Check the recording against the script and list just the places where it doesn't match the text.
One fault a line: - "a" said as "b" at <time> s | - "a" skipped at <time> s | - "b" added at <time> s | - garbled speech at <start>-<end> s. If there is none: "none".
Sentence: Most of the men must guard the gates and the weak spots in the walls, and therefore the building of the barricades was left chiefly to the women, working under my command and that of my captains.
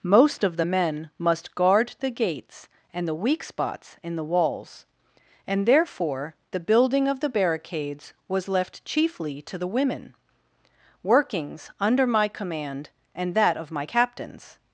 - "working" said as "workings" at 11.0 s